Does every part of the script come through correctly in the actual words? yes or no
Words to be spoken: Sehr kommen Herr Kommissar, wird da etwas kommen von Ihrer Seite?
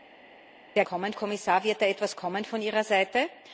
yes